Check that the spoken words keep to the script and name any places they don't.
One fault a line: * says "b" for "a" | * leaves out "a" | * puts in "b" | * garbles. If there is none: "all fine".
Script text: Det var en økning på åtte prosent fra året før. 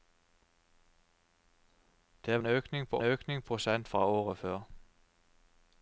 * leaves out "var"
* says "økning" for "åtte"